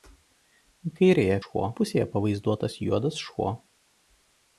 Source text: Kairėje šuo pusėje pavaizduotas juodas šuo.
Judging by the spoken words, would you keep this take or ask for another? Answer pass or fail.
pass